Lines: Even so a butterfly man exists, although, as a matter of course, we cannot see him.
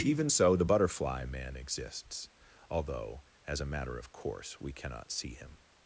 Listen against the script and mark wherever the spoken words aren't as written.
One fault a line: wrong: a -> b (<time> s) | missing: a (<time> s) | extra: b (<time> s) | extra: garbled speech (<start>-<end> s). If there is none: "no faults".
wrong: a -> the (0.5 s)